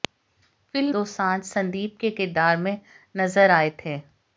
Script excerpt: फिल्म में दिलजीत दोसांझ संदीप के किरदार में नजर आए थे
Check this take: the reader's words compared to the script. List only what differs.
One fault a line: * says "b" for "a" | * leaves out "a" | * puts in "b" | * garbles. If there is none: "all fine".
* leaves out "में दिलजीत"